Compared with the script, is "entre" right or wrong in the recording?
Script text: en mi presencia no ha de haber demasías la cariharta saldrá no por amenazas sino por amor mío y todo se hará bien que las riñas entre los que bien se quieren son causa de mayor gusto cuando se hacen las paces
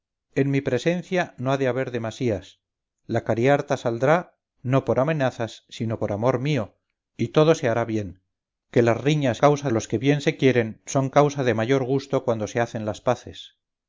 wrong